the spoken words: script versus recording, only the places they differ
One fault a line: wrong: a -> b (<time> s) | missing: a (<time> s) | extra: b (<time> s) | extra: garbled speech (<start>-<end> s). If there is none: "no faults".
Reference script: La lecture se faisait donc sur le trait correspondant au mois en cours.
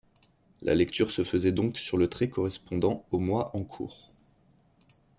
no faults